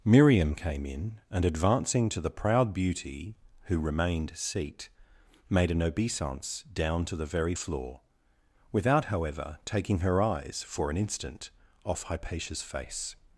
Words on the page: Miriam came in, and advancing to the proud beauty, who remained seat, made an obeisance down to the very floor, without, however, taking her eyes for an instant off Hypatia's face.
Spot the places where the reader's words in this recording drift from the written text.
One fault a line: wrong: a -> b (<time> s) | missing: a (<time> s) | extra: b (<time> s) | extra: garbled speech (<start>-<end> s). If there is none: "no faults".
no faults